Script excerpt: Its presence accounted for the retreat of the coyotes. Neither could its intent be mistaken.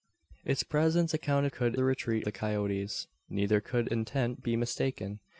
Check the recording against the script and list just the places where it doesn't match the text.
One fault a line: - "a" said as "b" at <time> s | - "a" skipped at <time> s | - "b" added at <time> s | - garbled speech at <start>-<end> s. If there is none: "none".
- "for" said as "could" at 1.5 s
- "of" skipped at 2.3 s
- "its" skipped at 3.9 s